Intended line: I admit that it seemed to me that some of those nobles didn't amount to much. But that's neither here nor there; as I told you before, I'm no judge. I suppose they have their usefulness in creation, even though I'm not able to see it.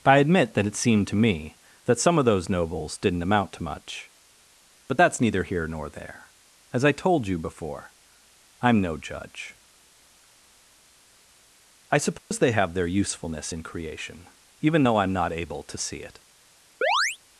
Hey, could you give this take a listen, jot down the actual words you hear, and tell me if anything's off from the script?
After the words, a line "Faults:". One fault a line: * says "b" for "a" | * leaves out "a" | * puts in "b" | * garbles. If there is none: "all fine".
I admit that it seemed to me that some of those nobles didn't amount to much. But that's neither here nor there; as I told you before, I'm no judge. I suppose they have their usefulness in creation, even though I'm not able to see it.
Faults:
all fine